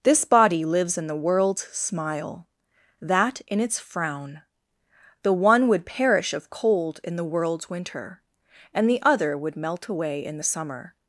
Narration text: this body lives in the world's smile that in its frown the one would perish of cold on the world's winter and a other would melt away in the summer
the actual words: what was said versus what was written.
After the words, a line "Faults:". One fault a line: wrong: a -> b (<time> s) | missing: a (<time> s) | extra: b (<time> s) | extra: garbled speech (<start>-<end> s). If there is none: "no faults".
this body lives in the world's smile that in its frown the one would perish of cold in the world's winter and the other would melt away in the summer
Faults:
wrong: on -> in (7.0 s)
wrong: a -> the (8.9 s)